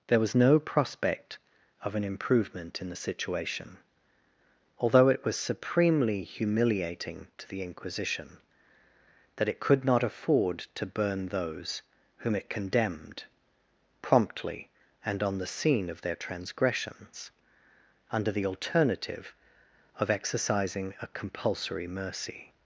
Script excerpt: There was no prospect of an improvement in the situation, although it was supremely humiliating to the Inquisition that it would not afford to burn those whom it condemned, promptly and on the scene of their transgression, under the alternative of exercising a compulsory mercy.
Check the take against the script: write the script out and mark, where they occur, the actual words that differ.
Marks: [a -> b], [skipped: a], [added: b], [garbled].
There was no prospect of an improvement in the situation, although it was supremely humiliating to the Inquisition that it [would -> could] not afford to burn those whom it condemned, promptly and on the scene of their [transgression, -> transgressions] under the alternative of exercising a compulsory mercy.